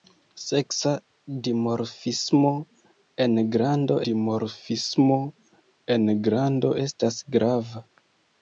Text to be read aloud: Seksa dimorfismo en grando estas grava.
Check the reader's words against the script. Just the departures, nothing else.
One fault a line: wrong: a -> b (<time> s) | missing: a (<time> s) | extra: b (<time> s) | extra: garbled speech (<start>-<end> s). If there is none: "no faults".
extra: dimorfismo en grando (4.1 s)